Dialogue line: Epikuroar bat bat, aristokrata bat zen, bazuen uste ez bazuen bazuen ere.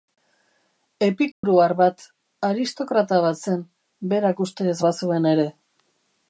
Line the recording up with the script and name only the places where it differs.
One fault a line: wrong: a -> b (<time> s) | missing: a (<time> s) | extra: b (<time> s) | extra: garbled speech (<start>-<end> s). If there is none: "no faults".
missing: bat (2.0 s)
wrong: bazuen -> berak (4.2 s)
missing: bazuen (5.3 s)